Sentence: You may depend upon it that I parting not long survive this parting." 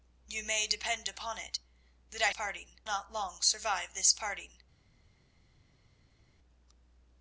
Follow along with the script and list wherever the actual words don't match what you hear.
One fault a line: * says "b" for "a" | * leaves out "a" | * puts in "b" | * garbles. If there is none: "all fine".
all fine